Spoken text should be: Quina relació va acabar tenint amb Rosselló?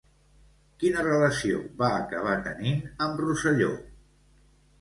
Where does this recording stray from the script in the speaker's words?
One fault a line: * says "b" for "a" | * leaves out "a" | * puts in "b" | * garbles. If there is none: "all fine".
all fine